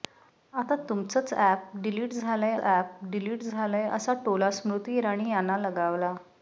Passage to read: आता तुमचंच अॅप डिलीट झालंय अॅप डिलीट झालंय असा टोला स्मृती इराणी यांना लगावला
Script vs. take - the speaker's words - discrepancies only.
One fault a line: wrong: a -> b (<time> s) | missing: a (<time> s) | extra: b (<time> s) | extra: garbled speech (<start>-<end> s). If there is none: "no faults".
no faults